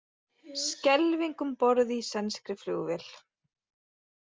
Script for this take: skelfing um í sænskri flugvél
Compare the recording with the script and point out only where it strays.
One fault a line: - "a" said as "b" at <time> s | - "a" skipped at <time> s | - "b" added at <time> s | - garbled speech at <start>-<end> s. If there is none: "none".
- "borð" added at 1.6 s